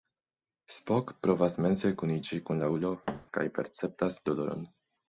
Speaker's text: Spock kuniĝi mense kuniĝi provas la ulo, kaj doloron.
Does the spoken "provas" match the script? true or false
false